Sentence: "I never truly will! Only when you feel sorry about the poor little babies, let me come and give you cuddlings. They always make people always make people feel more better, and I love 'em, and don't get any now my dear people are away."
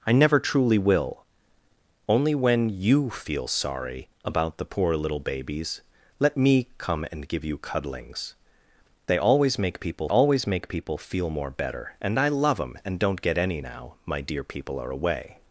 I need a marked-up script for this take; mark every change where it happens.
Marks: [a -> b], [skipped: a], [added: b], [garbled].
"I never truly will! Only when you feel sorry about the poor little babies, let me come and give you cuddlings. They always make people always make people feel more better, and I love 'em, and don't get any now my dear people are away."